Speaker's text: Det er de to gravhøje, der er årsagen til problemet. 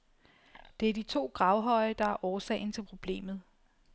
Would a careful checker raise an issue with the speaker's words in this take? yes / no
no